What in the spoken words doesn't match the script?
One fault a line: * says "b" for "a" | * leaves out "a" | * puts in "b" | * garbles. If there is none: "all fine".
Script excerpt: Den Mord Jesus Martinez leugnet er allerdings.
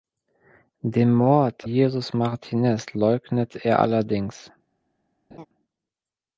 all fine